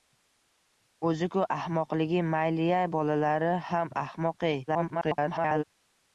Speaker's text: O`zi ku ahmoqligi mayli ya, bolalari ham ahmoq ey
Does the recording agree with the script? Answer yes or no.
no